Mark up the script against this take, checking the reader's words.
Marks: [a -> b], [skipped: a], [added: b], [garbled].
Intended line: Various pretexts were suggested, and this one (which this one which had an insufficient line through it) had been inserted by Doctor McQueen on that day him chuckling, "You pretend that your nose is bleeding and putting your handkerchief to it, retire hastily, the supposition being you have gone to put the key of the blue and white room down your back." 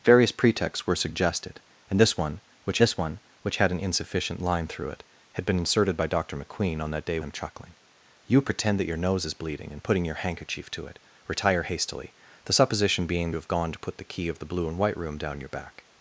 Various pretexts were suggested, and this one (which this one which had an insufficient line through it) had been inserted by Doctor McQueen on that day him chuckling, "You pretend that your nose is bleeding and putting your handkerchief to it, retire hastily, the supposition being you have gone to put the key of the blue and white room down your back."